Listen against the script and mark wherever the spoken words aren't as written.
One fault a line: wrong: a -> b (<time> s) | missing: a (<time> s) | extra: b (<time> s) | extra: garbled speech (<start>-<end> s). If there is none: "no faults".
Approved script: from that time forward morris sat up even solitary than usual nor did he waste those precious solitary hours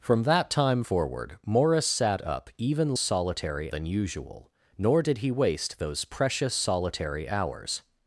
no faults